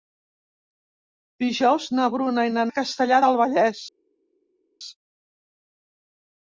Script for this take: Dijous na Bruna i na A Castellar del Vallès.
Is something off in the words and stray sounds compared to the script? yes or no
no